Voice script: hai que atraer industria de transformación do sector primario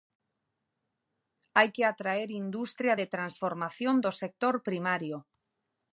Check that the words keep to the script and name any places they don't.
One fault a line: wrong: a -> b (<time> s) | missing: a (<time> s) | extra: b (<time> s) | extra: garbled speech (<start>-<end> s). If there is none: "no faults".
no faults